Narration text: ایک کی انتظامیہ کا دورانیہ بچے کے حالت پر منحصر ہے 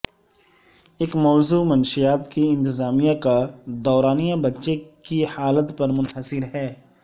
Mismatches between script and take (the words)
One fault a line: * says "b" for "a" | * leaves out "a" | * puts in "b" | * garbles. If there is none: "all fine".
* puts in "موضوع منشیات"
* says "کی" for "کے"